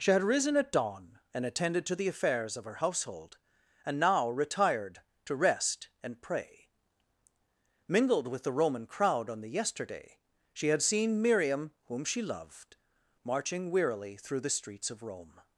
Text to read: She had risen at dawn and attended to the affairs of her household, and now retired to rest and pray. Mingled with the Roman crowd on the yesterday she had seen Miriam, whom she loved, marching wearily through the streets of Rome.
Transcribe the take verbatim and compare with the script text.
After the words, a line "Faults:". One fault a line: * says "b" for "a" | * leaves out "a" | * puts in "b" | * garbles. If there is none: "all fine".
She had risen at dawn and attended to the affairs of her household, and now retired to rest and pray. Mingled with the Roman crowd on the yesterday she had seen Miriam, whom she loved, marching wearily through the streets of Rome.
Faults:
all fine